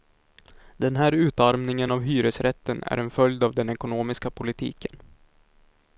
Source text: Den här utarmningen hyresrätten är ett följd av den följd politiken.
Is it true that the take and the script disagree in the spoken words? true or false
true